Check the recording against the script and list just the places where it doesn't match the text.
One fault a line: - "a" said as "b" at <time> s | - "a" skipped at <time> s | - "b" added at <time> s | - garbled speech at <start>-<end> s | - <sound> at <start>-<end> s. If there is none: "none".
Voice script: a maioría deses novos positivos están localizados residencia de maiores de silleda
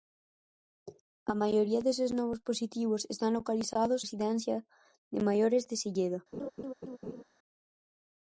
- laugh at 6.3-7.2 s